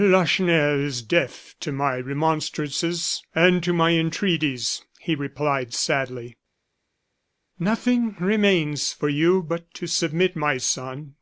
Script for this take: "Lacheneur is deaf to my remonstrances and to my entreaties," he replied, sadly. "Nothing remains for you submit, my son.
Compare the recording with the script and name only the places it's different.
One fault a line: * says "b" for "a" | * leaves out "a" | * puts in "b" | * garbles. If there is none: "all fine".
* puts in "but to"